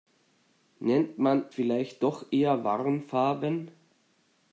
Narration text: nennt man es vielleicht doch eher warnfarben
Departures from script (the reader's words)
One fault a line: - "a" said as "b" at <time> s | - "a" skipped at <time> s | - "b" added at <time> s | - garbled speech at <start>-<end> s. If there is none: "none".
- "es" skipped at 1.4 s